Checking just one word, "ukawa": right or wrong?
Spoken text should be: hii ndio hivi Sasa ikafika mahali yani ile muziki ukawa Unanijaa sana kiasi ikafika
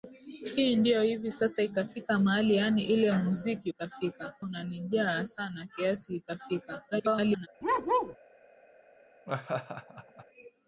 wrong